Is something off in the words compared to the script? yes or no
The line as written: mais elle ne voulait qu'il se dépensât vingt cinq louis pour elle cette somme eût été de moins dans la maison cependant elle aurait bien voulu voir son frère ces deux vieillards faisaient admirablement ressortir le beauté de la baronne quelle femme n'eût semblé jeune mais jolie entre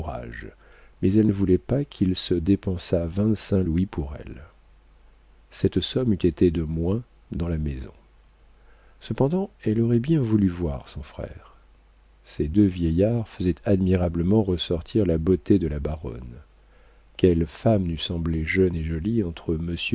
yes